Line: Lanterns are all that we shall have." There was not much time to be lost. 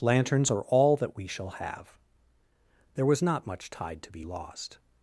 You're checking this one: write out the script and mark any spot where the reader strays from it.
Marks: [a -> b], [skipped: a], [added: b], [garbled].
Lanterns are all that we shall have." There was not much [time -> tide] to be lost.